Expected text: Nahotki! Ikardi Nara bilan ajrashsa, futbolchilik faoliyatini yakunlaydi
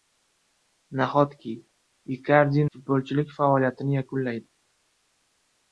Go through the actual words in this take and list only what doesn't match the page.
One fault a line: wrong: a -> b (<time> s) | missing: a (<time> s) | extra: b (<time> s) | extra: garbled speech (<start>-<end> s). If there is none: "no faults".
missing: Nara bilan ajrashsa (2.6 s)